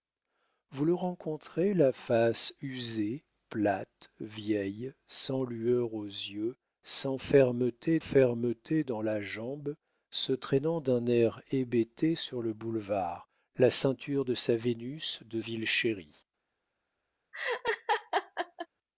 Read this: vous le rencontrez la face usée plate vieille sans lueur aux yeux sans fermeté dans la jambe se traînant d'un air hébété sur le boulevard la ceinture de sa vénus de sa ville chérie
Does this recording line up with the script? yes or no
no